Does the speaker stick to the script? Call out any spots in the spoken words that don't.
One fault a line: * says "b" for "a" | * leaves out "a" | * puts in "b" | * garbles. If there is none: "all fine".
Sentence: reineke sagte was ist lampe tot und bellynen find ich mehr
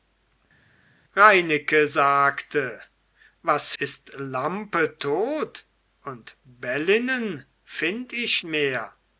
all fine